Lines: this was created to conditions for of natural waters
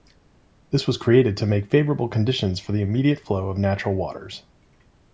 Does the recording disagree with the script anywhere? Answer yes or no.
yes